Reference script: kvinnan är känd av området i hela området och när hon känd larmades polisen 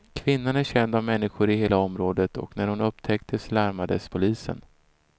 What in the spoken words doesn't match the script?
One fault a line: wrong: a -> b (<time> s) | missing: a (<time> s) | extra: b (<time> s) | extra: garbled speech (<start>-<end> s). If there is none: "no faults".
wrong: området -> människor (1.0 s)
wrong: känd -> upptäcktes (2.8 s)